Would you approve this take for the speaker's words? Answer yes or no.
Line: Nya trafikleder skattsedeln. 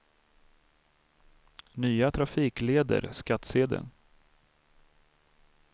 yes